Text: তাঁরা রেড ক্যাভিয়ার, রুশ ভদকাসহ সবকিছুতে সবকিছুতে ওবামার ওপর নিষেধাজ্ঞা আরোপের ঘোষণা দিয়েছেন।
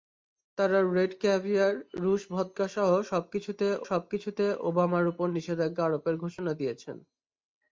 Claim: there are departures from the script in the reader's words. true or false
false